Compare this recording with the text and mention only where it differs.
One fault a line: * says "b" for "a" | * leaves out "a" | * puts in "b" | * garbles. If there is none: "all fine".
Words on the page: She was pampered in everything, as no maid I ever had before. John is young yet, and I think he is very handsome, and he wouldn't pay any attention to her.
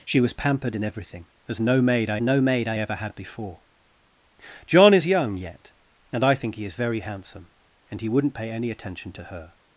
* puts in "no maid I"